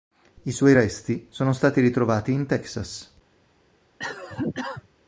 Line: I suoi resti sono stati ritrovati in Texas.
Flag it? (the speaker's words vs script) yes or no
no